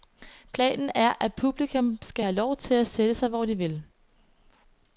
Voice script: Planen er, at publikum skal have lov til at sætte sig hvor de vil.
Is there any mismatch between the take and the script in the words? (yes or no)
no